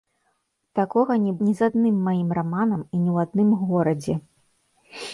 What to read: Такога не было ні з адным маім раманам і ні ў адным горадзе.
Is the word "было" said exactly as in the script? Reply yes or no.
no